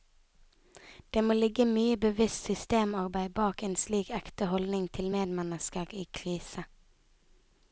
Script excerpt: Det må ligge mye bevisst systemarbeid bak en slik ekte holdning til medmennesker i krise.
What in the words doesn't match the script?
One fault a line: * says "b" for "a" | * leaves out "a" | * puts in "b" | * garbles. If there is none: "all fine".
all fine